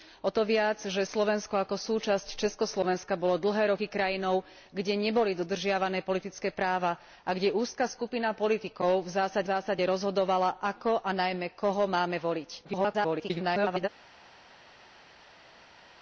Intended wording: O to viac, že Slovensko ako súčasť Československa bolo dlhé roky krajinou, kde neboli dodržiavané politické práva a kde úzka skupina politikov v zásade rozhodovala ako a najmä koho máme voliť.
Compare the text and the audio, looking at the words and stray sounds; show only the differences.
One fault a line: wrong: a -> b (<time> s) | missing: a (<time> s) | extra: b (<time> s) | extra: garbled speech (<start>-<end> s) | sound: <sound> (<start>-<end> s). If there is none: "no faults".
extra: zásade (9.4 s)
extra: garbled speech (12.6-13.9 s)